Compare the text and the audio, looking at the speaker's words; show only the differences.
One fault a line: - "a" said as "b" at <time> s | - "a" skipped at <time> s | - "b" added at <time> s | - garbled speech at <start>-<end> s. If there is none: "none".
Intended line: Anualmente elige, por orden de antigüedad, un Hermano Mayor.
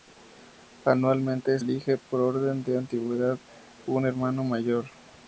none